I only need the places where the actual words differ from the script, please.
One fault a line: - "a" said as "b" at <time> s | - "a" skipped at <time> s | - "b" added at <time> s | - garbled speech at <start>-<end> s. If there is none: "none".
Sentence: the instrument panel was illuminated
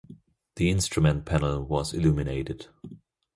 none